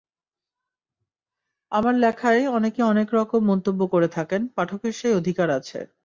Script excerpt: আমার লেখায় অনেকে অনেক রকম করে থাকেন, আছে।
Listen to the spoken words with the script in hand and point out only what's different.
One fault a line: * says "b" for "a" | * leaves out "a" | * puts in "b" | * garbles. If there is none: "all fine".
* puts in "মন্তব্য"
* puts in "পাঠকের সেই অধিকার"